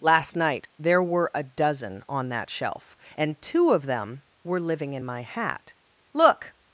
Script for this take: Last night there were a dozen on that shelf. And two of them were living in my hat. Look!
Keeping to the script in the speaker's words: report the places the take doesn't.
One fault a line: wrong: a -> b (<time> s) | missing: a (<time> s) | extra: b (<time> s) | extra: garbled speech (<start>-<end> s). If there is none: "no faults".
no faults